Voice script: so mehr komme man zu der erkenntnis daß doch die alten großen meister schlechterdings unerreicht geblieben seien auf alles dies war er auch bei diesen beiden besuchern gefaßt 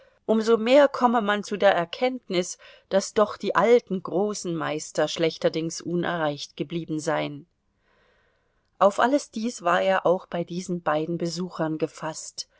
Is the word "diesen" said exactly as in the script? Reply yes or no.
yes